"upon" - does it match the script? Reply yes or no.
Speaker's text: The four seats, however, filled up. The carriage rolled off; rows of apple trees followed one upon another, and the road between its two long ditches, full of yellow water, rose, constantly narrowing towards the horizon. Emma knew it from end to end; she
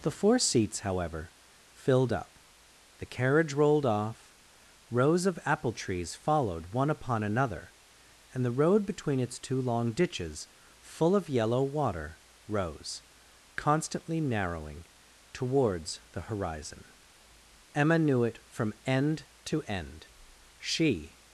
yes